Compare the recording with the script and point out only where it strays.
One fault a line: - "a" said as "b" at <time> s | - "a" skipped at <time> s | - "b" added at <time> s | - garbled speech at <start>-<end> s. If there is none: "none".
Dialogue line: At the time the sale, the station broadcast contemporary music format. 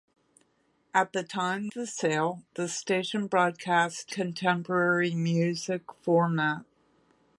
none